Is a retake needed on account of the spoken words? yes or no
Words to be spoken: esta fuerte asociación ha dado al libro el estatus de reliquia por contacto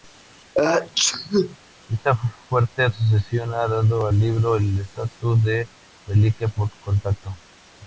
no